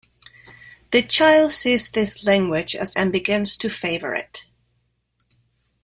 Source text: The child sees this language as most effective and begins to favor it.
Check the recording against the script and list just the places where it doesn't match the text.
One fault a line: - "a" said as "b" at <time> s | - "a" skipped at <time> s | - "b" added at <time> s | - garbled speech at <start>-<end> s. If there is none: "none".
- "most effective" skipped at 3.0 s